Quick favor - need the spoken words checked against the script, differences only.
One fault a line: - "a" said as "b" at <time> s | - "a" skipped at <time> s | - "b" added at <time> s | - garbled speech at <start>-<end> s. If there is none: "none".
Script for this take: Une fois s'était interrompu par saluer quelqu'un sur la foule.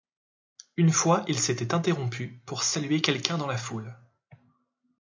- "il" added at 1.3 s
- "par" said as "pour" at 2.5 s
- "sur" said as "dans" at 3.4 s